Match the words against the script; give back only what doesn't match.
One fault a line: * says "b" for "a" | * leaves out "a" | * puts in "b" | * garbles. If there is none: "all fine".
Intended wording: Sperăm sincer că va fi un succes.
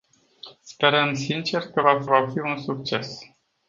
* puts in "va fi"